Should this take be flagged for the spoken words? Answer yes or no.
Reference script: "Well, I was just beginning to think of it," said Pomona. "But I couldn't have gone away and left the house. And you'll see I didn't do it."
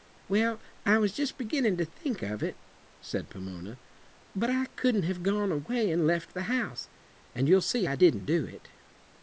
no